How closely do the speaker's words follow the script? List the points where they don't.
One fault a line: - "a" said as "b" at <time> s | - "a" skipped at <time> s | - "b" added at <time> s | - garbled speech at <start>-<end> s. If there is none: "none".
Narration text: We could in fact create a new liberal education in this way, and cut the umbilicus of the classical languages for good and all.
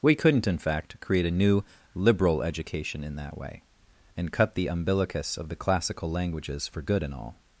- "could" said as "couldn't" at 0.1 s
- "this" said as "that" at 3.2 s